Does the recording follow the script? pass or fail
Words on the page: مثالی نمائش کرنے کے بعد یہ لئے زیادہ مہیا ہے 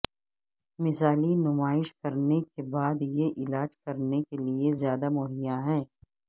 fail